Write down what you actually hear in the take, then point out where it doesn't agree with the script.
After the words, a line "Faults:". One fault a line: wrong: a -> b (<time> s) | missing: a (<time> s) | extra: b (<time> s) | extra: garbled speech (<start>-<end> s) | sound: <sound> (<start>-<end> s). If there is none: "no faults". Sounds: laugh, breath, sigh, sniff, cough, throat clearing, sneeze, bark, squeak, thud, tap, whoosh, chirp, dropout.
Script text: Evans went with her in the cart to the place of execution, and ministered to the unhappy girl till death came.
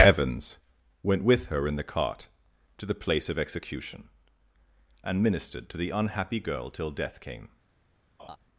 Evans went with her in the cart to the place of execution, and ministered to the unhappy girl till death came.
Faults:
sound: laugh (8.2-8.4 s)